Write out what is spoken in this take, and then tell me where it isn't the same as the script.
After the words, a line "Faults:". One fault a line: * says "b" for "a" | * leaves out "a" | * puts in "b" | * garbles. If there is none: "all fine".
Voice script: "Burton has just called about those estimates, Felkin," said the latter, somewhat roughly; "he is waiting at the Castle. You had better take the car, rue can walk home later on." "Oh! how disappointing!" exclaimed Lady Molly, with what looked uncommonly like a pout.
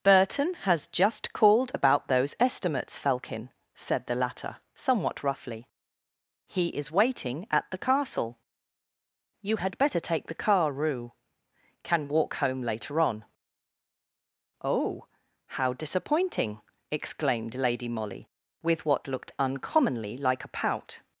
"Burton has just called about those estimates, Felkin," said the latter, somewhat roughly; "he is waiting at the Castle. You had better take the car, rue can walk home later on." "Oh! how disappointing!" exclaimed Lady Molly, with what looked uncommonly like a pout.
Faults:
all fine